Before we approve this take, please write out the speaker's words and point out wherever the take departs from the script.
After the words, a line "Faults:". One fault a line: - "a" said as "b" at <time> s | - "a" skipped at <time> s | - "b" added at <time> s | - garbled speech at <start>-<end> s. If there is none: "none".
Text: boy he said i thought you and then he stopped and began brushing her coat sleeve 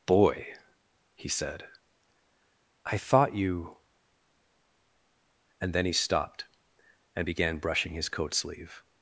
boy he said i thought you and then he stopped and began brushing his coat sleeve
Faults:
- "her" said as "his" at 7.9 s